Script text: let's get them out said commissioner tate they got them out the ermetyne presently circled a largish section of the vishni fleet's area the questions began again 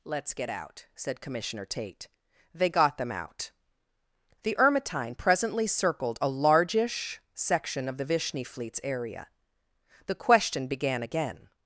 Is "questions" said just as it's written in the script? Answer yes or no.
no